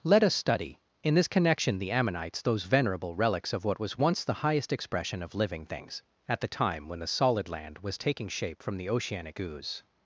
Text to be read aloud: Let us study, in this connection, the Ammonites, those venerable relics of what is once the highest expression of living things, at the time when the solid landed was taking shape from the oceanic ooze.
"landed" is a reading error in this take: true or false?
true